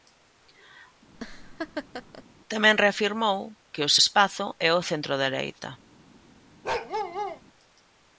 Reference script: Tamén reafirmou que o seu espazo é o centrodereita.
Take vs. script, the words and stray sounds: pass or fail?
fail